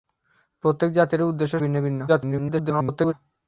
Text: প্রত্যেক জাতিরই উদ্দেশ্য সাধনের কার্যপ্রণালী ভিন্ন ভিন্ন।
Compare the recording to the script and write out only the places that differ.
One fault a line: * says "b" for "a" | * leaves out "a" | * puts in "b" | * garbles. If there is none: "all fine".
* leaves out "সাধনের কার্যপ্রণালী"
* garbles